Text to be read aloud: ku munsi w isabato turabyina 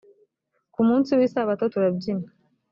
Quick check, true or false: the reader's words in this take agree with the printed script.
true